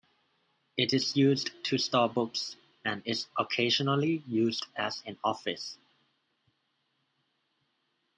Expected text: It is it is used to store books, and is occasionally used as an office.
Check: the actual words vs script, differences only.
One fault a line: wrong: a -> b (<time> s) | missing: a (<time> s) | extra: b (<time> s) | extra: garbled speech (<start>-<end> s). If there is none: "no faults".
missing: it is (1.2 s)